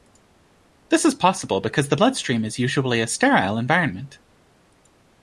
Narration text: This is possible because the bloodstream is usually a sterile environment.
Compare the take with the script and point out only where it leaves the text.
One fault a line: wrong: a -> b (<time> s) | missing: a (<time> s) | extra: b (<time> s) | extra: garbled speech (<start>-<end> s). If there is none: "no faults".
no faults